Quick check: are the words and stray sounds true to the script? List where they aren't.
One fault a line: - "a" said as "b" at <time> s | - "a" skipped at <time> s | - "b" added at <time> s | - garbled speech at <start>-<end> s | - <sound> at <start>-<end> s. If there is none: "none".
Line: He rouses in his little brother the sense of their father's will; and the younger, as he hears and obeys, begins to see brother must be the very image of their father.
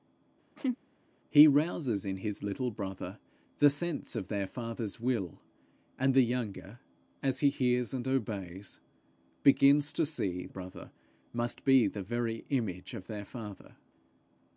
- laugh at 0.6-0.8 s